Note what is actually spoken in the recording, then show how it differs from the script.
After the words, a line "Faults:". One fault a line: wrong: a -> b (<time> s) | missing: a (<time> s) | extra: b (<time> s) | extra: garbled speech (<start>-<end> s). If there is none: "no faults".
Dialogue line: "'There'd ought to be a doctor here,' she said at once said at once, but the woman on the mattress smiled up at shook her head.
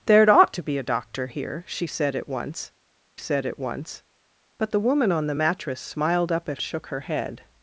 "'There'd ought to be a doctor here,' she said at once said at once, but the woman on the mattress smiled up at shook her head.
Faults:
no faults